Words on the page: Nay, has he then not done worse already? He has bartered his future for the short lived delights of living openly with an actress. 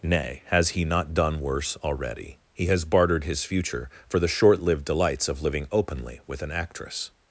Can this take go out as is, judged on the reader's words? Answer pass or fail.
fail